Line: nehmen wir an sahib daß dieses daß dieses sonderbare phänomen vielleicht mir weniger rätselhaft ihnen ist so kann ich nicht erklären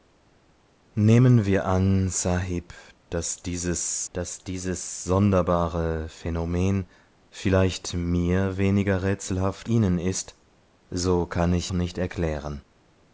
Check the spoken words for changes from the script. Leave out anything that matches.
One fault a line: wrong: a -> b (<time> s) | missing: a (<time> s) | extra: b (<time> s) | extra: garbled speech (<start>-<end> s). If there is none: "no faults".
no faults